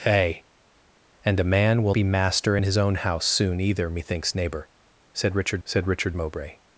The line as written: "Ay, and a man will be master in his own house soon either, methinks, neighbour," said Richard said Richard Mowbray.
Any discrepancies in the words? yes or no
no